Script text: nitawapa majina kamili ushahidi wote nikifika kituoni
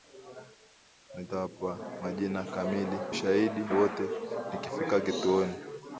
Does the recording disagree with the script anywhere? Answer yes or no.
no